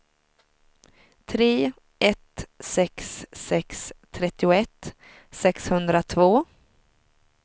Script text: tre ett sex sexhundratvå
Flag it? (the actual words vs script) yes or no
yes